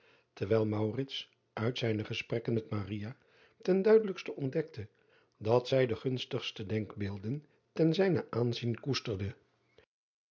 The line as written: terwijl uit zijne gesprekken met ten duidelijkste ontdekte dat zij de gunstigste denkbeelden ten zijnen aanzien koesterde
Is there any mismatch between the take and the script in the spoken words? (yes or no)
no